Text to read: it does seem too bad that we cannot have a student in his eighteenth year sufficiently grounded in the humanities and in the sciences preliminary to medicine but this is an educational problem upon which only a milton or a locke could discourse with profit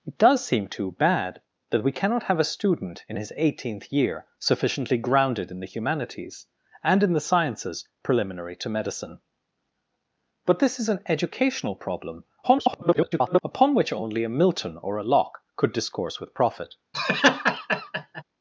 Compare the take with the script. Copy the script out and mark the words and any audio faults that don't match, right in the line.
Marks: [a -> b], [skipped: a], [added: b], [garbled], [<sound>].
it does seem too bad that we cannot have a student in his eighteenth year sufficiently grounded in the humanities and in the sciences preliminary to medicine but this is an educational problem [garbled] upon which only a milton or a locke could discourse with profit [laugh]